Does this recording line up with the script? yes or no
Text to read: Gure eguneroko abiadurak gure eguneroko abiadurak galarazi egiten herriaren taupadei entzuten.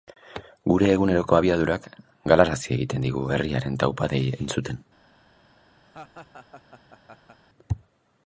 no